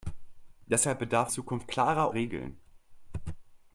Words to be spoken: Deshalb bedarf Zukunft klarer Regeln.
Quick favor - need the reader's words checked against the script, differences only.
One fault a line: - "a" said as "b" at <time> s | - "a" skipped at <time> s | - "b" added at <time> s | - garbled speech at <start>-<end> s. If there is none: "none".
none